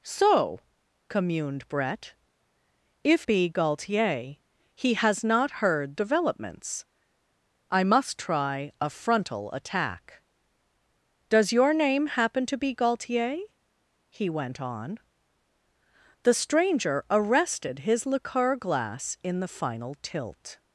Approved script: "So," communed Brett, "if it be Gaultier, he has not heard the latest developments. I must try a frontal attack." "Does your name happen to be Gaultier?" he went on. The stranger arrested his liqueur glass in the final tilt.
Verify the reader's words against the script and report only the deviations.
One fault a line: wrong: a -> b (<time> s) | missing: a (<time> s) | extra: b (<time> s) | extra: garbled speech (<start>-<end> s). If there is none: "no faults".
missing: it (3.3 s)
missing: the latest (6.0 s)